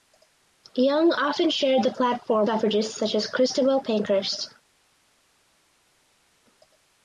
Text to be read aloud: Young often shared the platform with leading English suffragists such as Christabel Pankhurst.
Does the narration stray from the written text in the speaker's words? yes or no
yes